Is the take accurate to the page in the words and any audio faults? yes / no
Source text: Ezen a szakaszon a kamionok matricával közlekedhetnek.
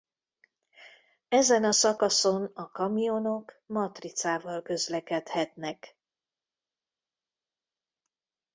yes